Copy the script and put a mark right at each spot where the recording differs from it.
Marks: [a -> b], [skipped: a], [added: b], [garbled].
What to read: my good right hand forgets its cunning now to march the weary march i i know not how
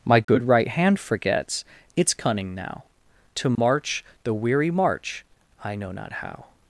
my good right hand forgets its cunning now to march the weary march i [skipped: i] know not how